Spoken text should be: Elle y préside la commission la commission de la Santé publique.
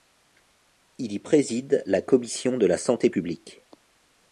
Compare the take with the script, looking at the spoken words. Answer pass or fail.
fail